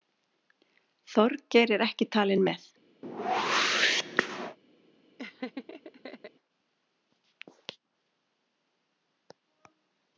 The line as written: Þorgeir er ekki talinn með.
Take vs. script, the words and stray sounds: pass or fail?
fail